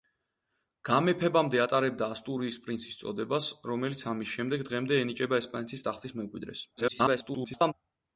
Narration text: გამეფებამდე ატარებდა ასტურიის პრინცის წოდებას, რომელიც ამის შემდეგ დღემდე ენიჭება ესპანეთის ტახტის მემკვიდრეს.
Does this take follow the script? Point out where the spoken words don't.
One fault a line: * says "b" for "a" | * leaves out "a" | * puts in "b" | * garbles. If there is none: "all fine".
* garbles